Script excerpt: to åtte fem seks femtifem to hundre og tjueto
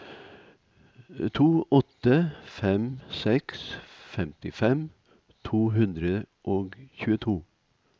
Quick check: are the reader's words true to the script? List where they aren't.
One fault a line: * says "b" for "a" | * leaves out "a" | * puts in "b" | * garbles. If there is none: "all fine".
all fine